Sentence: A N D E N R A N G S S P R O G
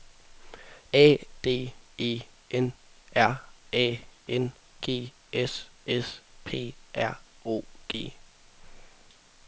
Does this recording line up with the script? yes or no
no